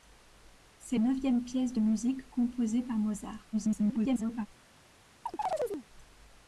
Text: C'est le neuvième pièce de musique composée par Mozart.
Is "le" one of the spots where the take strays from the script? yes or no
yes